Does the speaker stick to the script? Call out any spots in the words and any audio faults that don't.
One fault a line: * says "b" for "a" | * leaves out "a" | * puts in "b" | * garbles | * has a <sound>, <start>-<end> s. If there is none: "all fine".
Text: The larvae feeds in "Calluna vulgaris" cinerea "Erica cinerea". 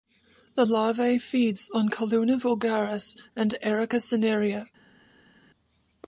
* says "on" for "in"
* says "and" for "cinerea"